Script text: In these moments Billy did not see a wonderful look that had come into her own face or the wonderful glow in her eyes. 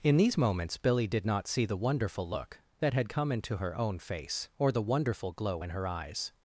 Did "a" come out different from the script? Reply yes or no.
yes